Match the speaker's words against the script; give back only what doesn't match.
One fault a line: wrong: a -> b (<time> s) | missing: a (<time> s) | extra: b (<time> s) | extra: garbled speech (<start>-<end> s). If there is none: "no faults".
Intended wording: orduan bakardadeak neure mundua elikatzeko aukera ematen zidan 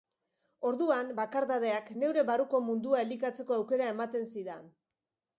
extra: barruko (2.3 s)